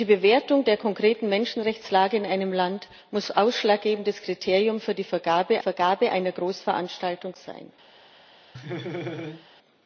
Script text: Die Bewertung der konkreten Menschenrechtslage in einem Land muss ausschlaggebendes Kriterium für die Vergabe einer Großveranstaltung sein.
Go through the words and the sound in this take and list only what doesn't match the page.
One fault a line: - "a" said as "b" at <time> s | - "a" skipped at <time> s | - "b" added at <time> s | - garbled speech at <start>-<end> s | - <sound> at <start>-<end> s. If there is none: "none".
- "Vergabe" added at 5.6 s
- laugh at 8.5-9.5 s